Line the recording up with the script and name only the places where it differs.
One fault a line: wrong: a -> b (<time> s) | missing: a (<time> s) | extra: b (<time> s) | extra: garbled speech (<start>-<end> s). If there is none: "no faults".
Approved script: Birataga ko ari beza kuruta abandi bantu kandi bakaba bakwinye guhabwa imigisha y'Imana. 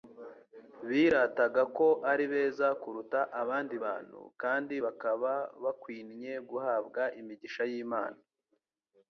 no faults